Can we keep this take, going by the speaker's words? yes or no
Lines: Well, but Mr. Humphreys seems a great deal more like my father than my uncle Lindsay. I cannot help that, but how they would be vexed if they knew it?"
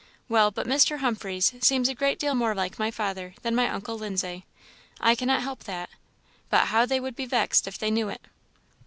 yes